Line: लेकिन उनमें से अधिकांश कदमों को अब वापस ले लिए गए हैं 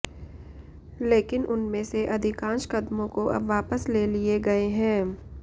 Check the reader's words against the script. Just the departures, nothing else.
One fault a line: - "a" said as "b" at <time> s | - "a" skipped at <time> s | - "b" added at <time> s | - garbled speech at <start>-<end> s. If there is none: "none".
none